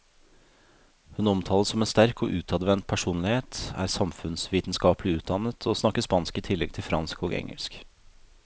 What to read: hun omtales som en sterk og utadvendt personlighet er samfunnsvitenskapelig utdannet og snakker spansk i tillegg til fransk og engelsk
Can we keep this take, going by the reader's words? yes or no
yes